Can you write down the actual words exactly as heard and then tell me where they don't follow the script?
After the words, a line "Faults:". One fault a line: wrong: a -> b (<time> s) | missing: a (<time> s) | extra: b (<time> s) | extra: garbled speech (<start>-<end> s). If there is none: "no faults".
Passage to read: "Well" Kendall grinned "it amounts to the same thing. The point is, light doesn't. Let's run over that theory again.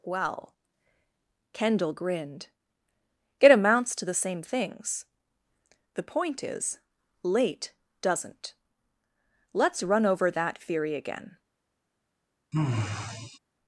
"Well" Kendall grinned "it amounts to the same things. The point is, late doesn't. Let's run over that theory again.
Faults:
wrong: thing -> things (4.4 s)
wrong: light -> late (7.2 s)